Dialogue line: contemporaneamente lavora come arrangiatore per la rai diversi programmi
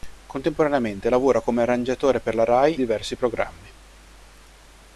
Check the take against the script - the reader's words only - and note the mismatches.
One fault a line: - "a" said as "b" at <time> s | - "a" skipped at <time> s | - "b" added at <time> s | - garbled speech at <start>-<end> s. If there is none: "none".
none